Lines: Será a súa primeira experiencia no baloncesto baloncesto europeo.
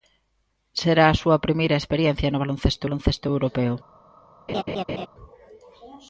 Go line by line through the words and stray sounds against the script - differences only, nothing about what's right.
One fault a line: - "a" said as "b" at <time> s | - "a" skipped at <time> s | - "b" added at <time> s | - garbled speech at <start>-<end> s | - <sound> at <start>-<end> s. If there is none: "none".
- laugh at 4.5-5.1 s